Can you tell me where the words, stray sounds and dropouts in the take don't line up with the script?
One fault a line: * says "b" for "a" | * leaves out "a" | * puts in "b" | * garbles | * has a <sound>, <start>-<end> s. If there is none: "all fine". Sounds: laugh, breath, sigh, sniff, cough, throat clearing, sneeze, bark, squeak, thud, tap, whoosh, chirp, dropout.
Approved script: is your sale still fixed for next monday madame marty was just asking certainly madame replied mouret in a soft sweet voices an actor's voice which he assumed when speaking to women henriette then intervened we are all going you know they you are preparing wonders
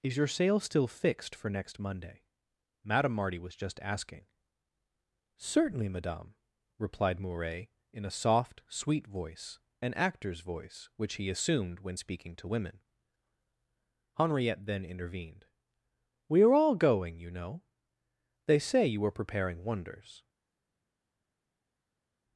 * says "voice" for "voices"
* puts in "say"